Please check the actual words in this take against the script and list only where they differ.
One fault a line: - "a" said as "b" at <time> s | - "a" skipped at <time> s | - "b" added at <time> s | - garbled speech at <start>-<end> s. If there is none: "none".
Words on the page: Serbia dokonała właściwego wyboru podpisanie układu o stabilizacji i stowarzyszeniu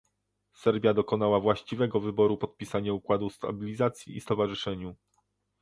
none